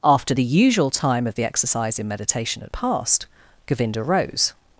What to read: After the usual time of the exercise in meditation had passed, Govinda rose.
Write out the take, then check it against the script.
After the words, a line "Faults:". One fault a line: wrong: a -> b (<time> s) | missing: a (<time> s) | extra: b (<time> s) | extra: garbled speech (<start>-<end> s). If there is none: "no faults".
After the usual time of the exercise in meditation had passed, Govinda rose.
Faults:
no faults